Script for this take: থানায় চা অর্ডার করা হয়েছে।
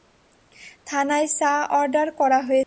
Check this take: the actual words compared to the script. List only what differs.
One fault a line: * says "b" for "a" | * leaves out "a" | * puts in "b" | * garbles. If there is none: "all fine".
all fine